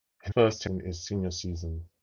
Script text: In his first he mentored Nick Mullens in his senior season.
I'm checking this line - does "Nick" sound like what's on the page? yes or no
no